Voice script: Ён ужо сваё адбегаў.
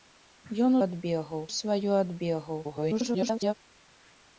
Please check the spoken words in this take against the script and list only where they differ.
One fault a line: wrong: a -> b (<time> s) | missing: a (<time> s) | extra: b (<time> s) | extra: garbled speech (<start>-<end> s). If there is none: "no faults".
wrong: ужо -> адбегаў (0.8 s)
extra: garbled speech (2.6-3.5 s)